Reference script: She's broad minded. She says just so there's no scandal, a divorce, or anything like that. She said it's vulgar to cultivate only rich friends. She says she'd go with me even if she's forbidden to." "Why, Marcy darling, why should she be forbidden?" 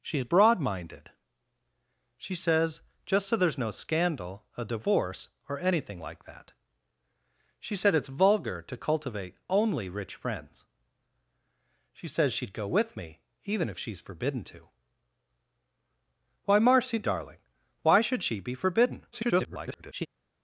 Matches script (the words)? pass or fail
fail